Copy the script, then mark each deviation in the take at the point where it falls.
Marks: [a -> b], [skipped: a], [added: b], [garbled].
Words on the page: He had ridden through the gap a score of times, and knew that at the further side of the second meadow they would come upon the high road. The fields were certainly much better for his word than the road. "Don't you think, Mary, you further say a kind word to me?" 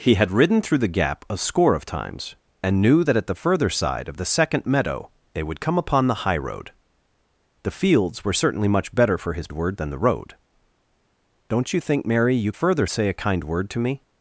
He had ridden through the gap a score of times, and knew that at the further side of the second meadow they would come upon the high road. The fields were certainly much better for his word than the road. "Don't you think, Mary, you further say a kind word to me?"